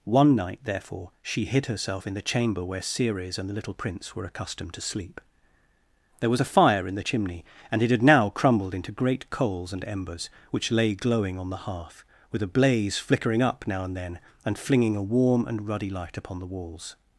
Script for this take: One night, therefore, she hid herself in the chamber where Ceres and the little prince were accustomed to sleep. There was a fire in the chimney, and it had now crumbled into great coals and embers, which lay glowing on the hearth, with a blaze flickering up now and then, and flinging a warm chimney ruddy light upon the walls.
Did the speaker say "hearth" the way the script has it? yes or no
yes